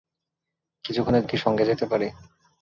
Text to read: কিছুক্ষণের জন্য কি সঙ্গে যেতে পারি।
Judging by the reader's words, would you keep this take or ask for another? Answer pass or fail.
fail